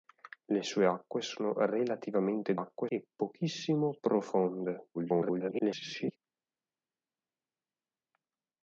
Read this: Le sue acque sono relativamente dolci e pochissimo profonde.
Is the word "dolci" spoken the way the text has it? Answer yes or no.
no